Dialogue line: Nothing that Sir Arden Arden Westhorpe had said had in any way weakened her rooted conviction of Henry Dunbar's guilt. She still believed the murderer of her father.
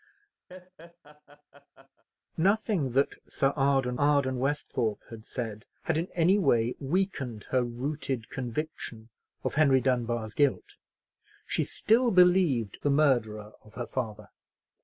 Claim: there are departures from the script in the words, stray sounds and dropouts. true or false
true